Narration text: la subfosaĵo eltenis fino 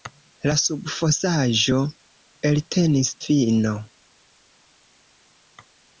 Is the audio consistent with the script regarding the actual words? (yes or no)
yes